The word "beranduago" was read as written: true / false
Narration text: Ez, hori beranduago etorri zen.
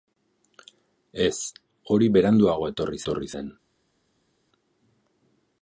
true